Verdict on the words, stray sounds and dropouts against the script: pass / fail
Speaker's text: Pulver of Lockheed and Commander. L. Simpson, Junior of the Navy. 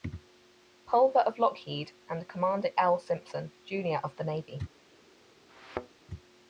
fail